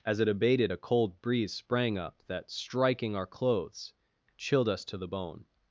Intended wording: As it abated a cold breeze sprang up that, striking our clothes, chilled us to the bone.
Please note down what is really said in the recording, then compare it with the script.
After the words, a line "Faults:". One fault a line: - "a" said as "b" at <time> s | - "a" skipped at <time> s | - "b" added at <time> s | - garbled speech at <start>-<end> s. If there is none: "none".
As it abated a cold breeze sprang up that, striking our clothes, chilled us to the bone.
Faults:
none